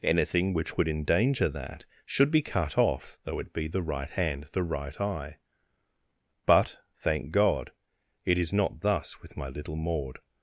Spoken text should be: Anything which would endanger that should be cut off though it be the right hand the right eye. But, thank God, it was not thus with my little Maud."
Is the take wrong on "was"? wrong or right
wrong